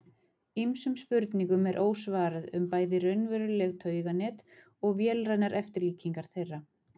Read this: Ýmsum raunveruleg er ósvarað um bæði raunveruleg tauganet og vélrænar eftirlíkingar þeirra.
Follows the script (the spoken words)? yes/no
no